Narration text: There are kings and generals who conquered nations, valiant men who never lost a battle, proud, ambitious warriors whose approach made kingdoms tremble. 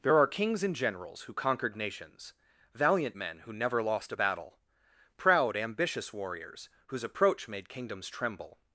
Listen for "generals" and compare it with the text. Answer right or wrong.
right